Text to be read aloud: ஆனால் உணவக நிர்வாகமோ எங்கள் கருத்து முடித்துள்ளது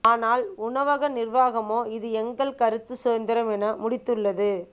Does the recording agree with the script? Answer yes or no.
no